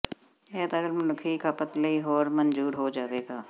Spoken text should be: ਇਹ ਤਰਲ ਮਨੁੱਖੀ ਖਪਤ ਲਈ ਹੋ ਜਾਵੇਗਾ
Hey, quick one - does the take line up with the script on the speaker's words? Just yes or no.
no